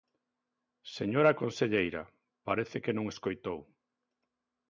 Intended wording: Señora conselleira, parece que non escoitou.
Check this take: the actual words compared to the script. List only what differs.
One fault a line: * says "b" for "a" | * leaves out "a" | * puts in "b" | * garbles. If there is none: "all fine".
all fine